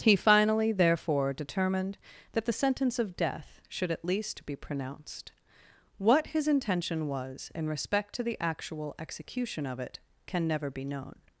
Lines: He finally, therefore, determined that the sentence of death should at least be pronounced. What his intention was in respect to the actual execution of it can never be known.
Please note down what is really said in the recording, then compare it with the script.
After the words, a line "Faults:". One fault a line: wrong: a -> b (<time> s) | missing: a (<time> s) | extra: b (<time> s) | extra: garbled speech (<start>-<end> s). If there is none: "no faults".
He finally, therefore, determined that the sentence of death should at least be pronounced. What his intention was in respect to the actual execution of it can never be known.
Faults:
no faults